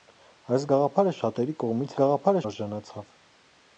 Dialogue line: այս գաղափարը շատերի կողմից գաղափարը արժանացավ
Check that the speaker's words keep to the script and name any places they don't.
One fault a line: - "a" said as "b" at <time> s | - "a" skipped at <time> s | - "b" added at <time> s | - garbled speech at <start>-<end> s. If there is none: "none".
none